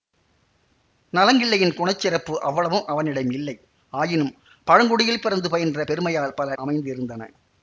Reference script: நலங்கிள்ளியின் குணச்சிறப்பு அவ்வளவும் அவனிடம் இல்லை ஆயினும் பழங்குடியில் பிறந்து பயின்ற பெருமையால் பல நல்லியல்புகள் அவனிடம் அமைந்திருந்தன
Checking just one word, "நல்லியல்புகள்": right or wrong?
wrong